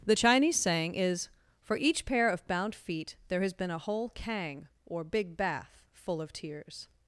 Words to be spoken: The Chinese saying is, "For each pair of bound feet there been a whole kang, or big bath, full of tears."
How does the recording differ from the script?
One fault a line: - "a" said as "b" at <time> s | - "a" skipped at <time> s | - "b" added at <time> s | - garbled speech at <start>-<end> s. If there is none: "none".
- "has" added at 3.4 s